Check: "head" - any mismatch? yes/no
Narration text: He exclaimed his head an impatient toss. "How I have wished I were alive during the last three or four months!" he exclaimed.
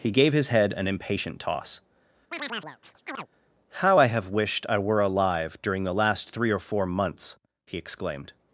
no